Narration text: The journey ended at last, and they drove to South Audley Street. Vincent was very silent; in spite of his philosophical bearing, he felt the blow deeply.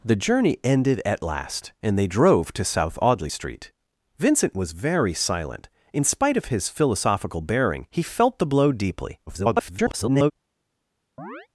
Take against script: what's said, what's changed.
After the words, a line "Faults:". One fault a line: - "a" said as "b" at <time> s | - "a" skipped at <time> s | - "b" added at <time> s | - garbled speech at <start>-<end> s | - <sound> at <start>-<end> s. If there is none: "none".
The journey ended at last, and they drove to South Audley Street. Vincent was very silent; in spite of his philosophical bearing, he felt the blow deeply. [garbled]
Faults:
- garbled speech at 9.3-10.3 s
- chirp at 11.2-11.5 s